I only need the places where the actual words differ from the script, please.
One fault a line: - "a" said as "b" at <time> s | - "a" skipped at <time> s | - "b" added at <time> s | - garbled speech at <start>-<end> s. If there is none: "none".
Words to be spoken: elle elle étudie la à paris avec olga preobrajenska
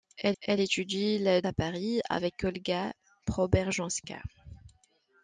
none